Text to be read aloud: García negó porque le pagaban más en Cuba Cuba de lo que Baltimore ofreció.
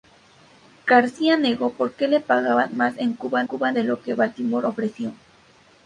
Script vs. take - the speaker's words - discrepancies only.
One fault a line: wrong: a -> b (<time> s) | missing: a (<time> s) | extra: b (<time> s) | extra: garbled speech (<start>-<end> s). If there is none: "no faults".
no faults